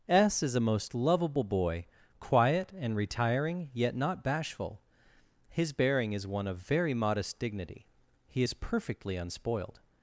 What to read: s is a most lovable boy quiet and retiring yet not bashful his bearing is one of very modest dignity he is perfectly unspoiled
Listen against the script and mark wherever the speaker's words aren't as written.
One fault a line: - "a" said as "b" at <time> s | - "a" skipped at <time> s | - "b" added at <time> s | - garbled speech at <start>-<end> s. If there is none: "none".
none